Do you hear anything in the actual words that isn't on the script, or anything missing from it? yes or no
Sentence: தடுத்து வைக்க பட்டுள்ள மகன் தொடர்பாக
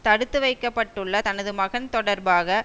yes